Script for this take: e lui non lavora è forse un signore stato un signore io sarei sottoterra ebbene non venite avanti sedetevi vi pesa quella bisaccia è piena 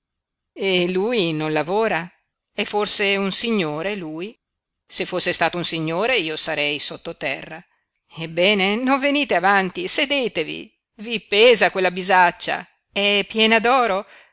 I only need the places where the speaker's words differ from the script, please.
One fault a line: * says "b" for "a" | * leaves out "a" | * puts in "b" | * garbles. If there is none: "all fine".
* puts in "lui se fosse"